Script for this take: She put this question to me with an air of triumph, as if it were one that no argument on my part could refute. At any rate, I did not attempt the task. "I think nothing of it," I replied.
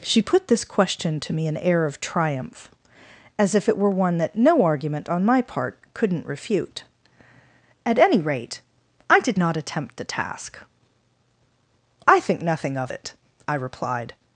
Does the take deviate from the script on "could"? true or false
true